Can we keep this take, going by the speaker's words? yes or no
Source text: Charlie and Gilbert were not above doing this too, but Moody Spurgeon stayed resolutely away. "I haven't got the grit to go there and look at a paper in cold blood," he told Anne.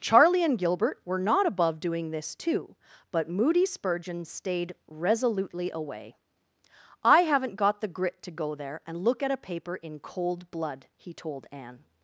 yes